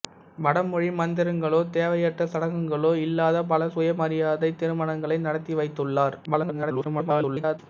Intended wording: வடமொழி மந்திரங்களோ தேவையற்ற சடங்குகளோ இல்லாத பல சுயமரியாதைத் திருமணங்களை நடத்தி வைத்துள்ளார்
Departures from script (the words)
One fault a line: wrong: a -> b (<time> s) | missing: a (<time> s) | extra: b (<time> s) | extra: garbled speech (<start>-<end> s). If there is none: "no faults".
extra: garbled speech (6.3-7.6 s)